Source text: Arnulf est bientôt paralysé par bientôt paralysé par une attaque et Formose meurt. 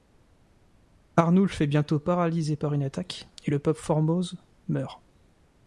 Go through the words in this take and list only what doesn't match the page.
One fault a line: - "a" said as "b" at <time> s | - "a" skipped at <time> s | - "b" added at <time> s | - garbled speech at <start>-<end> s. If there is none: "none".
- "bientôt paralysé par" skipped at 2.7 s
- "le pape" added at 3.5 s